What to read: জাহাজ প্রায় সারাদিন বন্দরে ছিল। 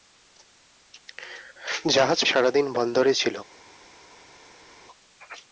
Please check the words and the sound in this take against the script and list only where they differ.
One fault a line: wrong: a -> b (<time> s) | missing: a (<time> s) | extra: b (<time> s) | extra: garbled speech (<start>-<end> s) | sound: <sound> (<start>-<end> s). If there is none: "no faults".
missing: প্রায় (2.2 s)